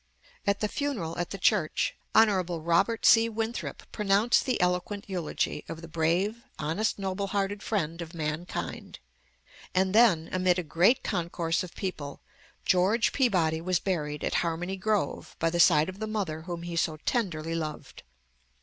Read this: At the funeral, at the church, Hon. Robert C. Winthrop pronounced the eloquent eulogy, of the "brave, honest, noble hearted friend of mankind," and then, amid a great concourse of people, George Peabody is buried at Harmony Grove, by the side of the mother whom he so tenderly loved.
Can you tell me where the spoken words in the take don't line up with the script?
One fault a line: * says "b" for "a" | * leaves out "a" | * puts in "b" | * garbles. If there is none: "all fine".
* says "was" for "is"